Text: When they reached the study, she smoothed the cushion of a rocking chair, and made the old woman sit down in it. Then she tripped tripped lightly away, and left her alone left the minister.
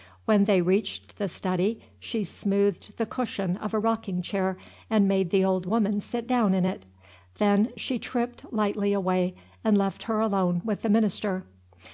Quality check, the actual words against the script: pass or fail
fail